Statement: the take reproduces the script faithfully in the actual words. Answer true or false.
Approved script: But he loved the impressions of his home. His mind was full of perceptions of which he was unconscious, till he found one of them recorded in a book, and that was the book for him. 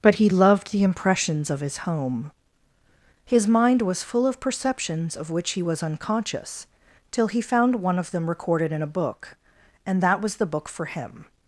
true